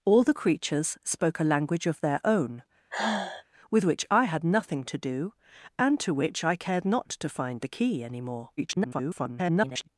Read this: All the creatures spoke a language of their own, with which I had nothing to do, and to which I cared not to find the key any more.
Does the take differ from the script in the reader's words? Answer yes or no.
yes